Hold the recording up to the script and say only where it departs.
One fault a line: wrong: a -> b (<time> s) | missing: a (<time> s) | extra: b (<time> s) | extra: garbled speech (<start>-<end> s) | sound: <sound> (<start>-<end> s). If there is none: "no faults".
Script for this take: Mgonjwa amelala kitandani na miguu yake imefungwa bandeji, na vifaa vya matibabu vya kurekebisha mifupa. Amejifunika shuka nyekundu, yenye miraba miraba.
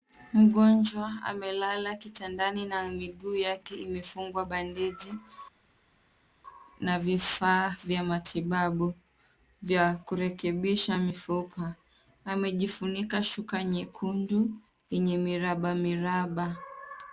no faults